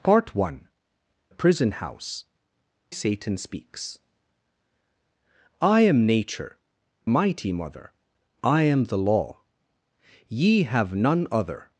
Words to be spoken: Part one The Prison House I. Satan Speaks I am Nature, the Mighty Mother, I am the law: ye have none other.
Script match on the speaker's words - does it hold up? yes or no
no